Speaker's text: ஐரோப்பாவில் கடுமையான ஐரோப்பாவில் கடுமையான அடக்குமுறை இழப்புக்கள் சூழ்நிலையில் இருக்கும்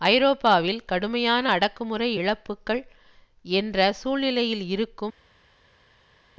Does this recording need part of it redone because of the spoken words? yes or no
yes